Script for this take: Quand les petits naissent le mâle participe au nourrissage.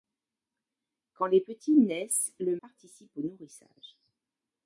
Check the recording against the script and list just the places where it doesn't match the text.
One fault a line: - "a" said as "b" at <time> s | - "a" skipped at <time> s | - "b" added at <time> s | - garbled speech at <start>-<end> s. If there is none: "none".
- "mâle" skipped at 2.6 s